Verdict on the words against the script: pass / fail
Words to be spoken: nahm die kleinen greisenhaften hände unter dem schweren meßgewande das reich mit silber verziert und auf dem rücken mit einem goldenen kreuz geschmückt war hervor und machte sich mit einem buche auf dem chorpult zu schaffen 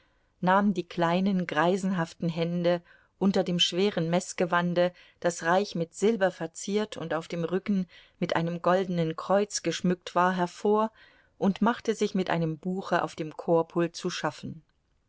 pass